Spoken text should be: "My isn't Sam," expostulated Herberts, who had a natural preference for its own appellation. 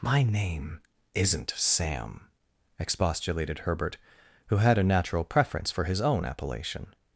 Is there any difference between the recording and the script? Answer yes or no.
yes